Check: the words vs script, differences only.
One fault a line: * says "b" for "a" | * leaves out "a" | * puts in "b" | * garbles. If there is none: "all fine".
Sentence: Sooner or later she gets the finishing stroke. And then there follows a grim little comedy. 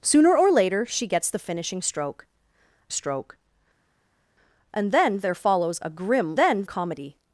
* puts in "stroke"
* says "then" for "little"